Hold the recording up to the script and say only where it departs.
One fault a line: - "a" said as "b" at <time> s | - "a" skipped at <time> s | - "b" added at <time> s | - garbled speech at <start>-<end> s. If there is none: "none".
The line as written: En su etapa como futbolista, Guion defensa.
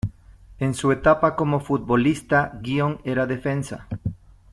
- "era" added at 3.0 s